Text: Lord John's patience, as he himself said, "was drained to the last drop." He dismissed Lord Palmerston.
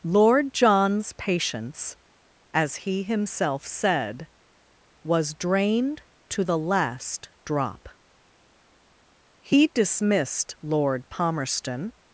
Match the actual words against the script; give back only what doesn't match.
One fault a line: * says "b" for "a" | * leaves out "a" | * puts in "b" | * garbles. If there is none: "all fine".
all fine